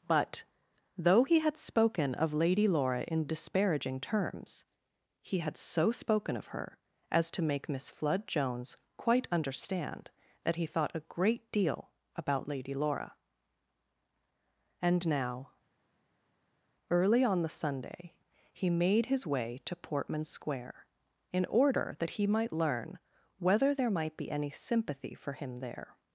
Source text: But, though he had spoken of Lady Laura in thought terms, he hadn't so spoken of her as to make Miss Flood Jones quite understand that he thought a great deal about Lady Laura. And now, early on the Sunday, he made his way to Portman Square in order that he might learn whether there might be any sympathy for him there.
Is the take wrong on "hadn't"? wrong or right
wrong